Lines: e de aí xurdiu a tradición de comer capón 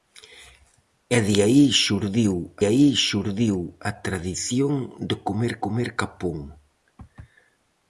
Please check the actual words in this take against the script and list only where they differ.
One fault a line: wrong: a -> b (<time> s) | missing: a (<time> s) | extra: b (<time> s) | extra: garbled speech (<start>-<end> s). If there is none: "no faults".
extra: aí xurdiu (2.7 s)
extra: comer (5.6 s)